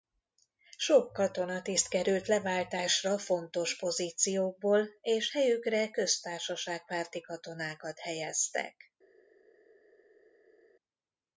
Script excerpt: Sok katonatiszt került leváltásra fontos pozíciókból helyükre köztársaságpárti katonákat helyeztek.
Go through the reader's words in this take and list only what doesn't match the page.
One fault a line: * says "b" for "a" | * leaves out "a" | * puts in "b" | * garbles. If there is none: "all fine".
* puts in "és"